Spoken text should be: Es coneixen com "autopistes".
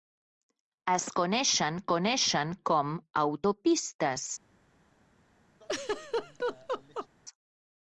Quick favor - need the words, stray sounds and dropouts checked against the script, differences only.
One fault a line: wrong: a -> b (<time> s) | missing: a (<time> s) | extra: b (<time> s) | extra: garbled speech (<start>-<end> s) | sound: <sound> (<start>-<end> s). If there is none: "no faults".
extra: coneixen (1.9 s)
sound: laugh (5.6-7.1 s)